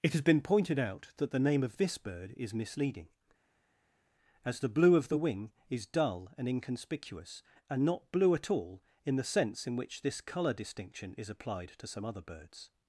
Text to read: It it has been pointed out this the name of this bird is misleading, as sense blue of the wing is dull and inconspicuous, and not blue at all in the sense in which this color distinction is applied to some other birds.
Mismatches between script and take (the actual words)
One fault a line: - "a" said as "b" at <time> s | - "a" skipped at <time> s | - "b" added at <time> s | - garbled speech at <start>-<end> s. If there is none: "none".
- "it" skipped at 0.1 s
- "this" said as "that" at 1.2 s
- "sense" said as "the" at 4.6 s